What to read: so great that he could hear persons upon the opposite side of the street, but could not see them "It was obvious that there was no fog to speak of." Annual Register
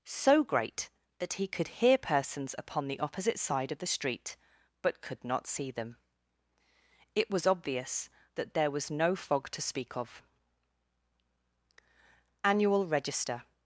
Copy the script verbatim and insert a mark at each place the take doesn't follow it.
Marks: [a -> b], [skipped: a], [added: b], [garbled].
so great that he could hear persons upon the opposite side of the street, but could not see them "It was obvious that there was no fog to speak of." Annual Register